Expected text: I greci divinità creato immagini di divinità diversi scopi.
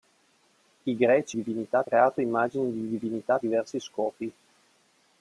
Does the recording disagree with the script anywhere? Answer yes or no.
no